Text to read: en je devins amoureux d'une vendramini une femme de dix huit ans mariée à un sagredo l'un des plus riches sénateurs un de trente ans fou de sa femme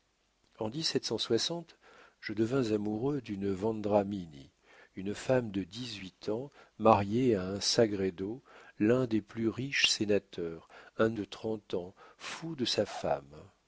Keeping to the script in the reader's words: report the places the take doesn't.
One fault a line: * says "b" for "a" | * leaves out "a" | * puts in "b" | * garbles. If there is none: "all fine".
all fine